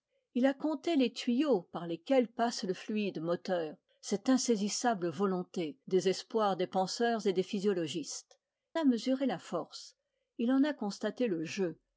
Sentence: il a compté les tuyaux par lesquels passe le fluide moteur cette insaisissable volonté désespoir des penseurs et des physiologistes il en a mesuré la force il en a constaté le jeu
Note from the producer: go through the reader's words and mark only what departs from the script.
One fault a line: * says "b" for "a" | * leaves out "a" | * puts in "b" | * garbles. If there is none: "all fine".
* leaves out "il en"